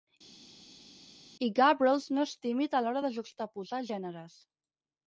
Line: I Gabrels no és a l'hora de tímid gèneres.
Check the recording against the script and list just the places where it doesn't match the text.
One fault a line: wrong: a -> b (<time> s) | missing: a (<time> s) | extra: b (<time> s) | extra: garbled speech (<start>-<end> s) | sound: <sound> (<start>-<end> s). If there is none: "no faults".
extra: tímid (2.5 s)
wrong: tímid -> juxtaposar (3.2 s)